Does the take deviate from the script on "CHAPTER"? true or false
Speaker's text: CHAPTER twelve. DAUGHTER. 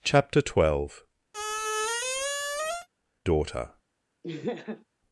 false